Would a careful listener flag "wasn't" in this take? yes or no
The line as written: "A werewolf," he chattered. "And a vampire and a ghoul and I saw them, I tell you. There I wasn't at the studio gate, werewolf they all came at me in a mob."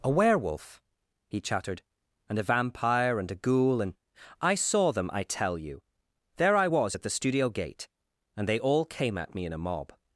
yes